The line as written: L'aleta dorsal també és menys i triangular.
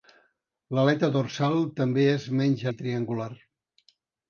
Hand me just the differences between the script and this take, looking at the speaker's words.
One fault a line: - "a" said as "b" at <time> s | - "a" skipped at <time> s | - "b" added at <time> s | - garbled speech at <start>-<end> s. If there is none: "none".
none